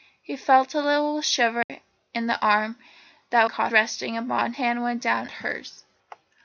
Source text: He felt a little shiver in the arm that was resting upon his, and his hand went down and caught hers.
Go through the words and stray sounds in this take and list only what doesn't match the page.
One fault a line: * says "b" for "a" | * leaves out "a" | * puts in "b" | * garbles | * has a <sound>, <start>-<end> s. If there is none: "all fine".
* has a dropout, 1.6-1.7 s
* says "caught" for "was"
* leaves out "his and his"
* leaves out "and caught"